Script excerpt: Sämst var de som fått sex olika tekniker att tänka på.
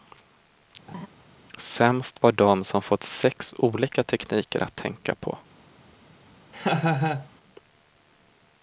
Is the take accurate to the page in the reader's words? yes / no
yes